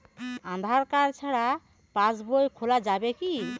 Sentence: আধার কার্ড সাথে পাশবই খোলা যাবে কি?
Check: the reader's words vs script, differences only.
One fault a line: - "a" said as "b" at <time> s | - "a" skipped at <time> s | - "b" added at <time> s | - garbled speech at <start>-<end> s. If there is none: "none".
- "সাথে" said as "ছাড়া" at 1.2 s